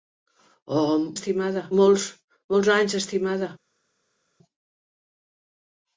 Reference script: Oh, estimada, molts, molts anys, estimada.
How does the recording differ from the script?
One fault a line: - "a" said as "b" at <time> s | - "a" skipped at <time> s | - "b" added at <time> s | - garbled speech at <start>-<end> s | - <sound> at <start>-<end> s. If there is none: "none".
none